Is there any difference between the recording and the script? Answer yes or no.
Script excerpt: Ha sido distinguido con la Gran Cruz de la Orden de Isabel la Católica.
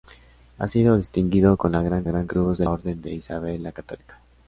yes